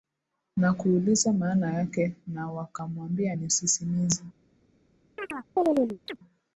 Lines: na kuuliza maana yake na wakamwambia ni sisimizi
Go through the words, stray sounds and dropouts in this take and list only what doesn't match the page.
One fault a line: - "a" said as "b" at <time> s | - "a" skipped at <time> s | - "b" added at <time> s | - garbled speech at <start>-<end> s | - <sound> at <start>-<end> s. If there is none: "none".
- chirp at 5.2-6.2 s